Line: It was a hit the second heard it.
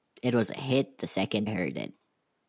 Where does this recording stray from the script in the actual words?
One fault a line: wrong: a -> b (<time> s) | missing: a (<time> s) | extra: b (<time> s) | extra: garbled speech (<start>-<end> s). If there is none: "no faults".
no faults